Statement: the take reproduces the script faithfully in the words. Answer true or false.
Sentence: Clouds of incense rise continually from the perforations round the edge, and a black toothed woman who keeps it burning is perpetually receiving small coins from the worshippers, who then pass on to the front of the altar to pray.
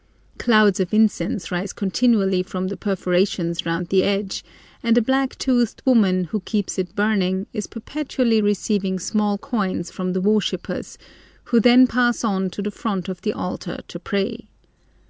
true